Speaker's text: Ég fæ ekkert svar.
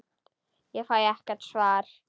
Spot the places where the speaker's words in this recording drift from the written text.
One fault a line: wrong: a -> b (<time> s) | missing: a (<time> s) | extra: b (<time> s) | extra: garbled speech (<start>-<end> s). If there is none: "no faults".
no faults